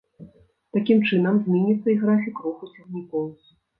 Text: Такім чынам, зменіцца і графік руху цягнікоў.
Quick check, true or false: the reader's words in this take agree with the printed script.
true